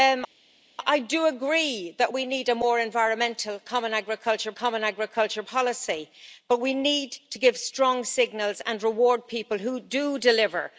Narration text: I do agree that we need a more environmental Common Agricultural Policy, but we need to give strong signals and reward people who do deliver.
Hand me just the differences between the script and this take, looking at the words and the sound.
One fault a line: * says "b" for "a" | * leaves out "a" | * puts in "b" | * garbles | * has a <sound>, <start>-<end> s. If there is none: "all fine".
* puts in "Common Agricultural"